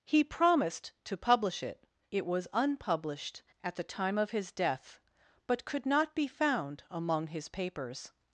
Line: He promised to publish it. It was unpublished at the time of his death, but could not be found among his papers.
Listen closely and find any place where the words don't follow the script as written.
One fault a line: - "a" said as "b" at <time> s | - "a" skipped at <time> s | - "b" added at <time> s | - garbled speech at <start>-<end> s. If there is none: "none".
none